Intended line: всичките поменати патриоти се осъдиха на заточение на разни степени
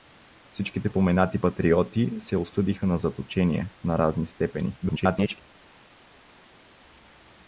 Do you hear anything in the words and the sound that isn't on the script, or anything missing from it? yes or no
yes